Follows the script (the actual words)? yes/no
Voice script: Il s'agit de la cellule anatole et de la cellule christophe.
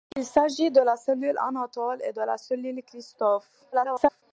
no